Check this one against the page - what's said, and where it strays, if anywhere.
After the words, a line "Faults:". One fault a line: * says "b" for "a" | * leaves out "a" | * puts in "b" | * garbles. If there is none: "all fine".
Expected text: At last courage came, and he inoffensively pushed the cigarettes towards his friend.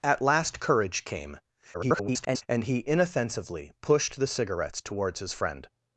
At last courage came, [garbled] and he inoffensively pushed the cigarettes towards his friend.
Faults:
* garbles